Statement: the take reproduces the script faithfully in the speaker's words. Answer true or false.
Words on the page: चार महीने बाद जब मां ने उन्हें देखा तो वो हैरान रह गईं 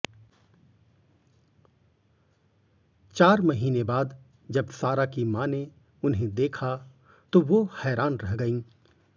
false